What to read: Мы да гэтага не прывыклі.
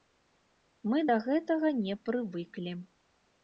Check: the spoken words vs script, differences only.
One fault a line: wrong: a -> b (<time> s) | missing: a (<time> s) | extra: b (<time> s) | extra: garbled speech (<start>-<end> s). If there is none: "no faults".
no faults